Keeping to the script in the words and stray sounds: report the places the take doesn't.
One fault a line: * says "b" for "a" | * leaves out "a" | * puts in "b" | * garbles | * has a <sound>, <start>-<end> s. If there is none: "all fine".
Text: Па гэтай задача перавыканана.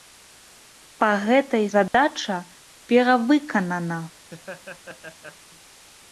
* has a dropout, 1.9-1.9 s
* has a laugh, 4.2-5.4 s